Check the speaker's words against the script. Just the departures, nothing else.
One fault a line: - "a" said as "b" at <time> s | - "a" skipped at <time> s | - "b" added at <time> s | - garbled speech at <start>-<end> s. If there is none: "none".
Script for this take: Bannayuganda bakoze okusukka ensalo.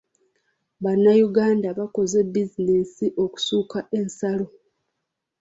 - "bizinensi" added at 2.3 s